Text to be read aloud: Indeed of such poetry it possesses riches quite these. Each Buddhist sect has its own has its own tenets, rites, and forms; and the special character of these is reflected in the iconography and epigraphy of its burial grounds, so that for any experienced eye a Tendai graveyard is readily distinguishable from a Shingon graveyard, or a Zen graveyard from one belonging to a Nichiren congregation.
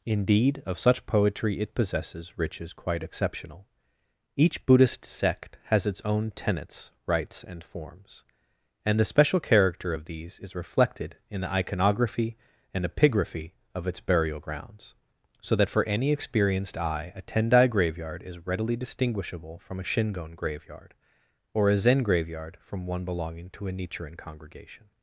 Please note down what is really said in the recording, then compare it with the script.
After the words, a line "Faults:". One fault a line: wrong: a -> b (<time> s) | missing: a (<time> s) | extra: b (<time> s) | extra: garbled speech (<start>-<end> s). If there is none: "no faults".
Indeed of such poetry it possesses riches quite exceptional. Each Buddhist sect has its own tenets, rites, and forms; and the special character of these is reflected in the iconography and epigraphy of its burial grounds, so that for any experienced eye a Tendai graveyard is readily distinguishable from a Shingon graveyard, or a Zen graveyard from one belonging to a Nichiren congregation.
Faults:
wrong: these -> exceptional (3.0 s)
missing: has its own (6.3 s)